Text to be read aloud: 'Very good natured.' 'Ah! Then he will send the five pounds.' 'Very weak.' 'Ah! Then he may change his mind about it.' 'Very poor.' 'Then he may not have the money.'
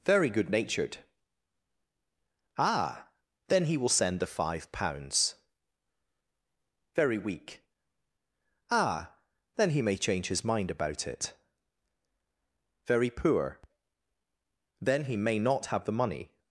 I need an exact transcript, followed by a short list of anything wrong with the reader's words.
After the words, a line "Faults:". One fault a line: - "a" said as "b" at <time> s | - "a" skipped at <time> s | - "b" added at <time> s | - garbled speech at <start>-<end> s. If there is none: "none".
'Very good natured.' 'Ah! Then he will send the five pounds.' 'Very weak.' 'Ah! Then he may change his mind about it.' 'Very poor.' 'Then he may not have the money.'
Faults:
none